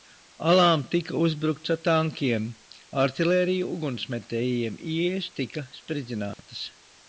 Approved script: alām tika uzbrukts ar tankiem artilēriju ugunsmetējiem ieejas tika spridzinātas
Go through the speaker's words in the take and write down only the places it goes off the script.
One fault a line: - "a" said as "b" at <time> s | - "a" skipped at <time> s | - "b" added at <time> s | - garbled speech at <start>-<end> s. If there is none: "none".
none